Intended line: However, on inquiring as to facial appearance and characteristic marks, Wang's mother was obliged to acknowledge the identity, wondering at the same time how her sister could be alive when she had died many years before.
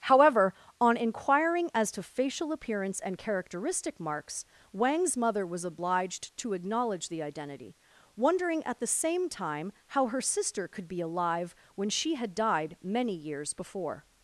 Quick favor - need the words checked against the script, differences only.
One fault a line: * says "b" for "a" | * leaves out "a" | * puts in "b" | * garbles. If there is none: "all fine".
all fine